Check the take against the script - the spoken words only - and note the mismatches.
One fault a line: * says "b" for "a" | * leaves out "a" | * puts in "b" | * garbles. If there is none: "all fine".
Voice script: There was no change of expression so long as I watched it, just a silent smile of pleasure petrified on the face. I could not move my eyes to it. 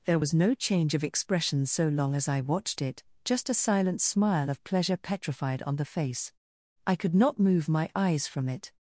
* says "from" for "to"